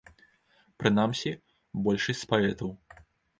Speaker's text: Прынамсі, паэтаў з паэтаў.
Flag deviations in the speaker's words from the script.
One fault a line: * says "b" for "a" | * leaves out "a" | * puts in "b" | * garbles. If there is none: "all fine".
* says "большасць" for "паэтаў"